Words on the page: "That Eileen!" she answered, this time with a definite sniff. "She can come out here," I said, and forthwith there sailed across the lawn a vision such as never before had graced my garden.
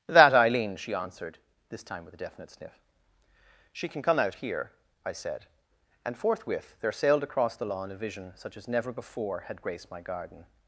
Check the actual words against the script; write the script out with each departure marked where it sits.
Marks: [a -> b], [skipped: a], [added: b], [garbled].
"That Eileen!" she answered, this time with a definite sniff. "She can come out here," I said, and forthwith there sailed across the lawn a vision such as never before had graced my garden.